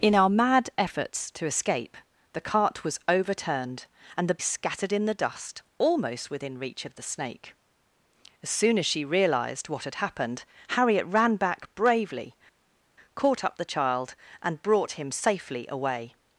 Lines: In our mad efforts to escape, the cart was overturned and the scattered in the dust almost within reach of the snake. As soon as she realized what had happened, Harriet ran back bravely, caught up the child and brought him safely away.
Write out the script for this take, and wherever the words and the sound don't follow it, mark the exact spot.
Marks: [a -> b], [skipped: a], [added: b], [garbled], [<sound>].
In our mad efforts to escape, the cart was overturned and the scattered in the dust almost within reach of the snake. As soon as she realized what had happened, Harriet ran back bravely, caught up the child and brought him safely away.